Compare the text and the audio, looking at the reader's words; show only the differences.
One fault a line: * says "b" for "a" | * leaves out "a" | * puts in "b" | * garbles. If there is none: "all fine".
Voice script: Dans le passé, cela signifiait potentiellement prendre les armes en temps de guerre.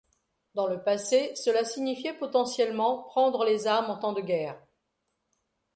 all fine